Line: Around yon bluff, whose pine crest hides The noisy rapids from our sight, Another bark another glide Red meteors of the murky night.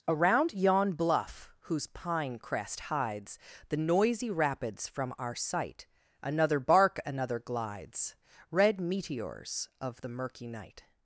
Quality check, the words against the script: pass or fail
fail